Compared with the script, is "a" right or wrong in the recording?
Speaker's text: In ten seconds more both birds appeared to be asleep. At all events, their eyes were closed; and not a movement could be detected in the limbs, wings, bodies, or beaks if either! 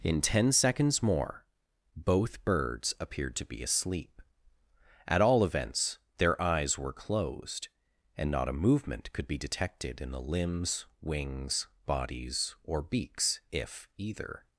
right